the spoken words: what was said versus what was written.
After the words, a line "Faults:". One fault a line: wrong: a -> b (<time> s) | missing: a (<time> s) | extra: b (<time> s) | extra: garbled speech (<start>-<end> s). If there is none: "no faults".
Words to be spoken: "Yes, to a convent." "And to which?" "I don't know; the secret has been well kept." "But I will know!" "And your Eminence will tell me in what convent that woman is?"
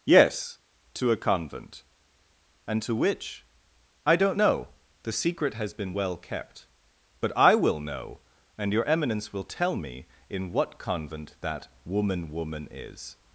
"Yes, to a convent." "And to which?" "I don't know; the secret has been well kept." "But I will know!" "And your Eminence will tell me in what convent that woman woman is?"
Faults:
extra: woman (12.3 s)